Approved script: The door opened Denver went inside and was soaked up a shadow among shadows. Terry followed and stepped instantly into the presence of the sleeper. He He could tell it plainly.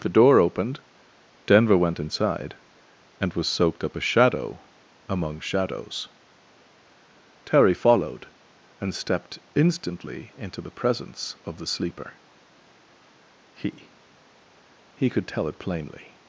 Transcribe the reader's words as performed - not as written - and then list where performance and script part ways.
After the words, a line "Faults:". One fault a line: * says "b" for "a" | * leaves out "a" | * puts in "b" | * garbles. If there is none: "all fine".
The door opened Denver went inside and was soaked up a shadow among shadows. Terry followed and stepped instantly into the presence of the sleeper. He He could tell it plainly.
Faults:
all fine